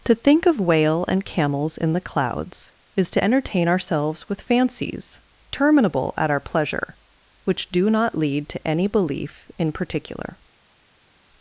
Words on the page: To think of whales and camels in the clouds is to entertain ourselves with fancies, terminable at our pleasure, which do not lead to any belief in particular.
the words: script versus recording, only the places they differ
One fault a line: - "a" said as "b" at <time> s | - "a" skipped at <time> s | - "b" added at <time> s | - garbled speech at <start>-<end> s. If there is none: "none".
- "whales" said as "whale" at 0.6 s